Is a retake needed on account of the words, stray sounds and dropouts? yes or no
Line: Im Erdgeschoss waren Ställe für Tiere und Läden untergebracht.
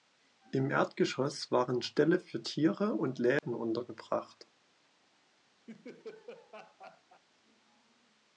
yes